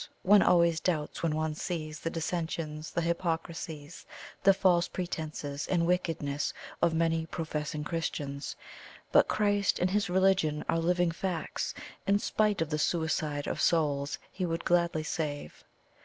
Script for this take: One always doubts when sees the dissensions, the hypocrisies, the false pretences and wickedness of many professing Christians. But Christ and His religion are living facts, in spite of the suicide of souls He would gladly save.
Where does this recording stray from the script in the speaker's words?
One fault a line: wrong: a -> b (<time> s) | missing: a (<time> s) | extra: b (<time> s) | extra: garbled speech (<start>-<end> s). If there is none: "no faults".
extra: one (1.4 s)